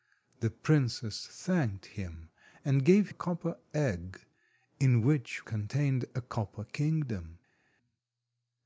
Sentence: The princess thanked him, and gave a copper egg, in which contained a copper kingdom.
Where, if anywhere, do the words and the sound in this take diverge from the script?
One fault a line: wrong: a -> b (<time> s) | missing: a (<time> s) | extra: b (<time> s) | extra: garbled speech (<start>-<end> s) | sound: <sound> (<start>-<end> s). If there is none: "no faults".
no faults